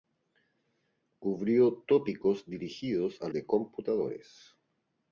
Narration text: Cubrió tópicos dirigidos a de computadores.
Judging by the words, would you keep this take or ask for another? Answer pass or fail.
pass